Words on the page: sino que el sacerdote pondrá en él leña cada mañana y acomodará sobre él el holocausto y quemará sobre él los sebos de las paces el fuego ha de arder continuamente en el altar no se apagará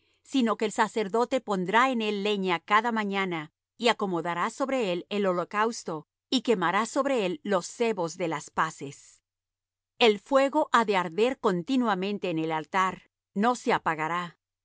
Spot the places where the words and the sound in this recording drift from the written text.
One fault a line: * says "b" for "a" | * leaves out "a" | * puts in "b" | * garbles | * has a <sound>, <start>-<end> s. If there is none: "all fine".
all fine